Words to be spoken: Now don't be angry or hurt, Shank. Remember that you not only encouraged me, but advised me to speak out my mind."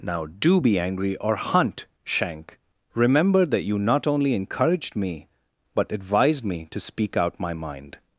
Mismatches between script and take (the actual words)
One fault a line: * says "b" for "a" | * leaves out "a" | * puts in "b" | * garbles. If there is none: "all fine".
* says "do" for "don't"
* says "hunt" for "hurt"